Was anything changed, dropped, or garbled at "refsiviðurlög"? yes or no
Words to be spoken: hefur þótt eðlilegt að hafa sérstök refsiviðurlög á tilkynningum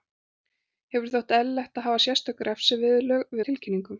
no